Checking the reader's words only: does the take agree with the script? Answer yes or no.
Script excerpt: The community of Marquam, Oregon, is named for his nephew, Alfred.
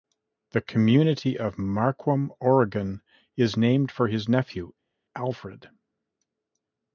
yes